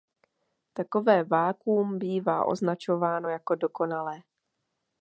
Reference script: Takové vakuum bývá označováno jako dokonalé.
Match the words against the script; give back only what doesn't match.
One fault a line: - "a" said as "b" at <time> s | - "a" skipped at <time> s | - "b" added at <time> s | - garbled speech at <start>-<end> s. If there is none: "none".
none